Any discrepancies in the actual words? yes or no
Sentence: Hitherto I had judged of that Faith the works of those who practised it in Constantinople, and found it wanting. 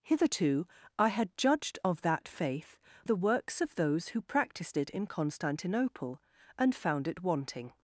no